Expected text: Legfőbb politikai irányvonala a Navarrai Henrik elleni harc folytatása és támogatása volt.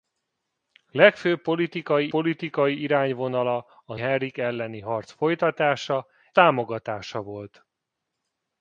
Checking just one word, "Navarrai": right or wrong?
wrong